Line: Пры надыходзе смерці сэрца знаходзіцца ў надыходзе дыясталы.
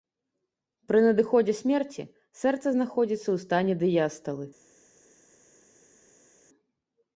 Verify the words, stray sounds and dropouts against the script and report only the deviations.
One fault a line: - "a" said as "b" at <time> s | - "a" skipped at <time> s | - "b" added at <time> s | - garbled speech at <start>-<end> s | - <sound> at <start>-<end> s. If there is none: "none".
- "надыходзе" said as "стане" at 3.5 s